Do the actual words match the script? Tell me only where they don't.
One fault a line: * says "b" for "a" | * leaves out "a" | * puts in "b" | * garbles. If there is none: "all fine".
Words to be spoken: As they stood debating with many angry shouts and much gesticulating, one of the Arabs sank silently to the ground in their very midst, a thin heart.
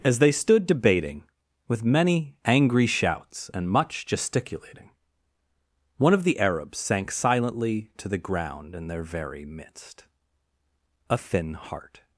all fine